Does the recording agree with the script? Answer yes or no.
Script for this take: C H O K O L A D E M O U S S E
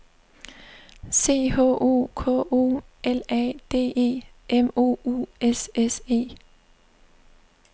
yes